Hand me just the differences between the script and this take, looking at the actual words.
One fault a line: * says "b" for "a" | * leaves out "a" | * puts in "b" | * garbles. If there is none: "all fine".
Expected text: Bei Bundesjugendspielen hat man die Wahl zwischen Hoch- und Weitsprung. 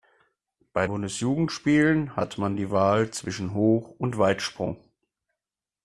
all fine